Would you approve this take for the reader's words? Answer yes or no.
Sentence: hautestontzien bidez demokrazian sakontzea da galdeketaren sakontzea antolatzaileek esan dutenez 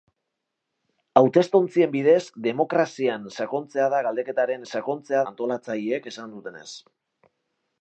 yes